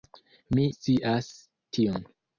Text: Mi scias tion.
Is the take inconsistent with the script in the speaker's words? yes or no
no